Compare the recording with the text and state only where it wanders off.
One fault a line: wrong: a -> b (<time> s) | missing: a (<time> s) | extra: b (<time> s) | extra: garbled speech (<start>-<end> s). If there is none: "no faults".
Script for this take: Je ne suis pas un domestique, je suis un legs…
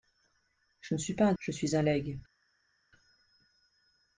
missing: domestique (1.3 s)